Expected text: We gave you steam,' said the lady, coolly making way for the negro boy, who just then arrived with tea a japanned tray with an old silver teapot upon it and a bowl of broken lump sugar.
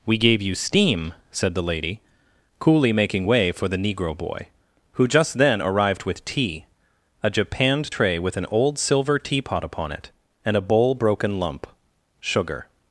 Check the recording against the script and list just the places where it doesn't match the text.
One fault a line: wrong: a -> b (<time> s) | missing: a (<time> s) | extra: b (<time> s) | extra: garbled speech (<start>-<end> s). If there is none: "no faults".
missing: of (10.9 s)